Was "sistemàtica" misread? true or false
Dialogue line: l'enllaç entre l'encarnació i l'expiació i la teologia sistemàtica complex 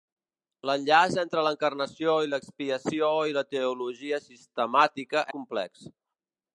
false